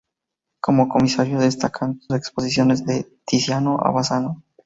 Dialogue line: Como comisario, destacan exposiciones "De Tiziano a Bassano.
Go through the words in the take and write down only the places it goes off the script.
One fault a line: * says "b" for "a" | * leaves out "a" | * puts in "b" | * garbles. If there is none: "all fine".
all fine